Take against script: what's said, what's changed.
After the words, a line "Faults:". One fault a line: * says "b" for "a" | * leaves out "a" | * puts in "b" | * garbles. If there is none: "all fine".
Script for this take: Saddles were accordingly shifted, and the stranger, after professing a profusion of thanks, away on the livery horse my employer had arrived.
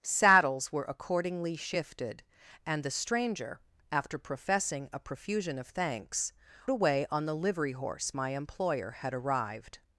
Saddles were accordingly shifted, and the stranger, after professing a profusion of thanks, away on the livery horse my employer had arrived.
Faults:
all fine